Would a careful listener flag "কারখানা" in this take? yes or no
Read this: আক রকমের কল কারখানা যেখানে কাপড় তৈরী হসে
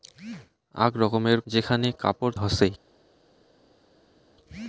yes